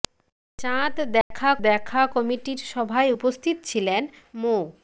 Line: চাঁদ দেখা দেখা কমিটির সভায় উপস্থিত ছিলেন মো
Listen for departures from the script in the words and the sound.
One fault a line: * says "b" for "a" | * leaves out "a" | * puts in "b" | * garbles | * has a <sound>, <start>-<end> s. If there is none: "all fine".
* has a dropout, 1.2-1.3 s